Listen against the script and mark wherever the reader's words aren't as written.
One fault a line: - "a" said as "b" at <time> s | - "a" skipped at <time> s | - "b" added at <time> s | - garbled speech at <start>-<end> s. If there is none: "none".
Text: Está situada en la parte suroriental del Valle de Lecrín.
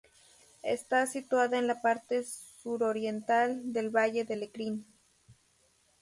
none